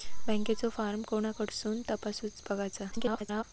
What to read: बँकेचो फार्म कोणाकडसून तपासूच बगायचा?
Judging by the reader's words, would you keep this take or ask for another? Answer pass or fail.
fail